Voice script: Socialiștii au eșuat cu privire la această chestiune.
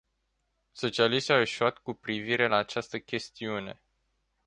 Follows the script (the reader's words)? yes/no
yes